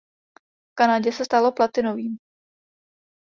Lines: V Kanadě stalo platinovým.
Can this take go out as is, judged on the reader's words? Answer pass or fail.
fail